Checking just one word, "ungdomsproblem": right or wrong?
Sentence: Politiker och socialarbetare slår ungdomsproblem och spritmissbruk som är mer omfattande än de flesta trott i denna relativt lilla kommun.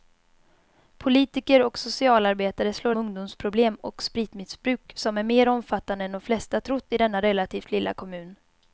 right